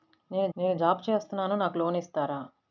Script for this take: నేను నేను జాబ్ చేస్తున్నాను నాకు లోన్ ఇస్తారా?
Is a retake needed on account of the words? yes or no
no